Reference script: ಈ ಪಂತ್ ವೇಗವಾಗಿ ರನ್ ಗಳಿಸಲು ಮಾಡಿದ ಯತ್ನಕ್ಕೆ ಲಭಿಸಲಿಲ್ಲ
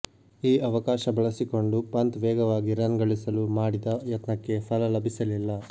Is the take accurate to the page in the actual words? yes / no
no